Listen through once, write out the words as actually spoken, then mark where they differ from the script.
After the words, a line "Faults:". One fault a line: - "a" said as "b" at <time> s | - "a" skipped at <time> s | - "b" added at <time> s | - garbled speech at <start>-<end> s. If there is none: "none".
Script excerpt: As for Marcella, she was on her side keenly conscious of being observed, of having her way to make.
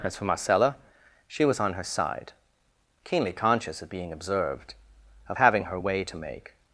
As for Marcella, she was on her side keenly conscious of being observed, of having her way to make.
Faults:
none